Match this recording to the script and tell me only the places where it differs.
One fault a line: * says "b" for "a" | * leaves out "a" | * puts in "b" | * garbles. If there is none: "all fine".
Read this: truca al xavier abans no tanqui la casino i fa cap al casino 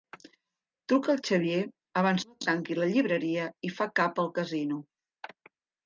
* says "llibreria" for "casino"